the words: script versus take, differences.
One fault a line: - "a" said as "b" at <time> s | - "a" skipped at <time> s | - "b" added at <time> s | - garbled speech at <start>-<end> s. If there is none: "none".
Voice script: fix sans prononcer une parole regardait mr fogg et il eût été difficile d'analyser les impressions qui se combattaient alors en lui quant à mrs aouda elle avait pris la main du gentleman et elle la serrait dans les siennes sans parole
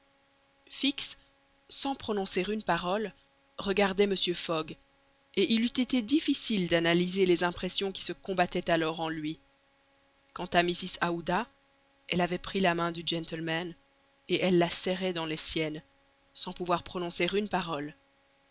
- "pouvoir prononcer une" added at 16.5 s